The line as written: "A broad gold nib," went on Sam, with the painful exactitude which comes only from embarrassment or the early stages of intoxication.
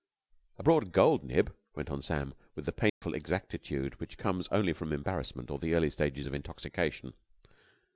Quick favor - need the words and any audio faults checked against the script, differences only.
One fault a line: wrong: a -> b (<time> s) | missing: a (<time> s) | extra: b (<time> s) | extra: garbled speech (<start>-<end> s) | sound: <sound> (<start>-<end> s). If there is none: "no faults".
sound: dropout (2.9-3.0 s)